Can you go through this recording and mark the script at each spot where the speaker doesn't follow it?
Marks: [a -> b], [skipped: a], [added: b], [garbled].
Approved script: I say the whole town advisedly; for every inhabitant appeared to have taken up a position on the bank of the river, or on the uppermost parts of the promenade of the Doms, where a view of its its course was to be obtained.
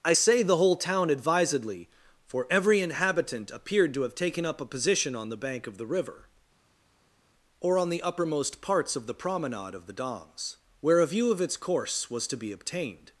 I say the whole town advisedly; for every inhabitant appeared to have taken up a position on the bank of the river, or on the uppermost parts of the promenade of the Doms, where a view of its [skipped: its] course was to be obtained.